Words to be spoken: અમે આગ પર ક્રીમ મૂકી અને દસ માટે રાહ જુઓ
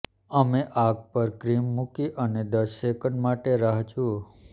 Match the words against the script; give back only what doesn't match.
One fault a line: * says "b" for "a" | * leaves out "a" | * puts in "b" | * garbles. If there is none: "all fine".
* puts in "સેકન્ડ"